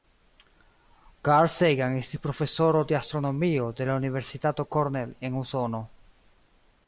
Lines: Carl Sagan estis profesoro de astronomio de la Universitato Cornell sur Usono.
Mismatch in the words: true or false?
true